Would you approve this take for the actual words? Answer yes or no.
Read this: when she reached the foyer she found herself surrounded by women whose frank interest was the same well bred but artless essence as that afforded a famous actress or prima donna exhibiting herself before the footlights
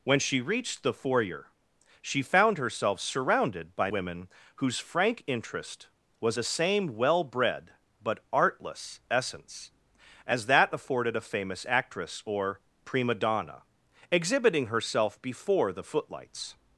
yes